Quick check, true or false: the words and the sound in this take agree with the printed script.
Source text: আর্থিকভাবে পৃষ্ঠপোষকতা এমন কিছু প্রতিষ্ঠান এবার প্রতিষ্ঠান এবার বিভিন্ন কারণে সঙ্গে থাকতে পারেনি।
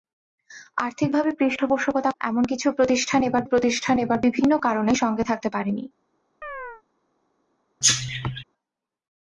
false